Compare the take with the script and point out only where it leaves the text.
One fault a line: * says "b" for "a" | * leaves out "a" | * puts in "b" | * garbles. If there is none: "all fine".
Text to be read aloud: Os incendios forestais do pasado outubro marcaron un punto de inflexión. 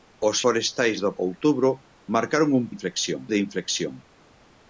* leaves out "incendios"
* leaves out "pasado"
* says "inflexión" for "punto"